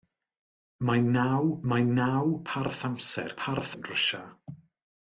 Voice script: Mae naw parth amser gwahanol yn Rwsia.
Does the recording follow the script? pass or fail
fail